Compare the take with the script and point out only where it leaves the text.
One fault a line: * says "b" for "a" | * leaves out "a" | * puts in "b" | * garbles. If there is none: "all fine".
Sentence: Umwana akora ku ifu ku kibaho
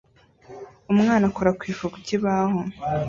all fine